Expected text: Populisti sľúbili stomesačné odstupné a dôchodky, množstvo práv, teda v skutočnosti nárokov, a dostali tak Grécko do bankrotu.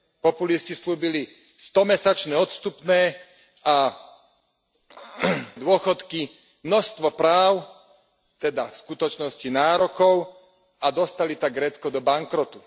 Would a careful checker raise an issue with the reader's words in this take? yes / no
no